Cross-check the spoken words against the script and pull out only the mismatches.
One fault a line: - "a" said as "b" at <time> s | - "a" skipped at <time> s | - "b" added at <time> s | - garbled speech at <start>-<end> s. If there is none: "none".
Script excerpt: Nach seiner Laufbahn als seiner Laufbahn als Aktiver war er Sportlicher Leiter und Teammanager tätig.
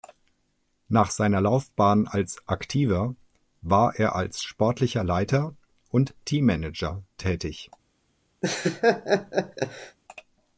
- "seiner Laufbahn als" skipped at 2.4 s
- "als" added at 4.2 s